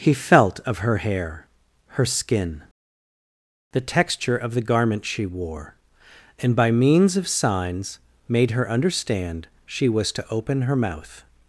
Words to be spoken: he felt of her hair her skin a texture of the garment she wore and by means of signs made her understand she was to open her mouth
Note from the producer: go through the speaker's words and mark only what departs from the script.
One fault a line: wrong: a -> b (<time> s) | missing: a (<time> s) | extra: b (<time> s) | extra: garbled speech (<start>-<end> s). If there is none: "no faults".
wrong: a -> the (3.7 s)